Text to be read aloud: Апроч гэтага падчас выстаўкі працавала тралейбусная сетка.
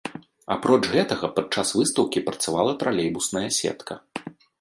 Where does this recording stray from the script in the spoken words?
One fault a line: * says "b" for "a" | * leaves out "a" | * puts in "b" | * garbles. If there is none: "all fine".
all fine